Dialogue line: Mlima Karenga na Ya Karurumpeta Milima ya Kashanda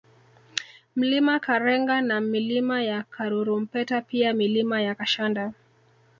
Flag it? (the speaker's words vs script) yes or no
yes